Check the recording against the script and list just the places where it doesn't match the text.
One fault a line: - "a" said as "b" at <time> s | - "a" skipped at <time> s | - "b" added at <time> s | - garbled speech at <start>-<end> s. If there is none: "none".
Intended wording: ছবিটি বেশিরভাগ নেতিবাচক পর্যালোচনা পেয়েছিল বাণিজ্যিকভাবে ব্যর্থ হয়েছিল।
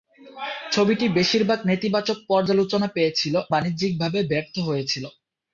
none